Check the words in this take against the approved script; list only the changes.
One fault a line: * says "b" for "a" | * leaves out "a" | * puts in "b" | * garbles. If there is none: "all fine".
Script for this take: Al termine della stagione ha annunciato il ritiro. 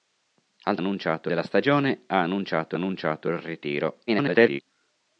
* says "annunciato" for "termine"
* puts in "annunciato"
* garbles